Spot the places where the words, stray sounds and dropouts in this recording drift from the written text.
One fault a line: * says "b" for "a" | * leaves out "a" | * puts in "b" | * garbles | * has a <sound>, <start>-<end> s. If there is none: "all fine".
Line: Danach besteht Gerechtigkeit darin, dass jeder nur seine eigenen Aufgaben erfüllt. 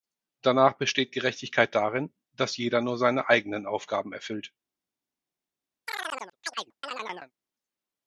* has a chirp, 5.9-7.3 s